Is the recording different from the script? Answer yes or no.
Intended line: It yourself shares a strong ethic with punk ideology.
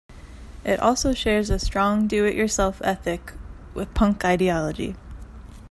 yes